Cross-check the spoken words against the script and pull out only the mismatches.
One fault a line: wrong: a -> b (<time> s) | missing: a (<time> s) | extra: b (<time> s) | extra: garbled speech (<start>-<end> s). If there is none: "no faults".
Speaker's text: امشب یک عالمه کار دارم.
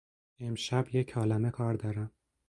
no faults